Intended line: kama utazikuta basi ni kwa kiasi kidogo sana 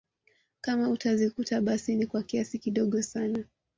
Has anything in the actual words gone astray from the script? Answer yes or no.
no